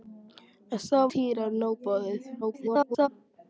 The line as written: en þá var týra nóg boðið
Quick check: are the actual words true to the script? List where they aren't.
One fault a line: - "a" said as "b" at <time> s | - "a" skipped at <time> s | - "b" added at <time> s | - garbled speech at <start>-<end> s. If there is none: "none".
- "var" skipped at 1.0 s
- garbled speech at 2.4-3.1 s